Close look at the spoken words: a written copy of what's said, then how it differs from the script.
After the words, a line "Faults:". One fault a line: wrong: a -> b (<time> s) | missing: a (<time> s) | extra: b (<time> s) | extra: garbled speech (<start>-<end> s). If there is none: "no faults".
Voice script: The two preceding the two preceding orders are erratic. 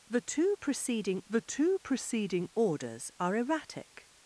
The two preceding the two preceding orders are erratic.
Faults:
no faults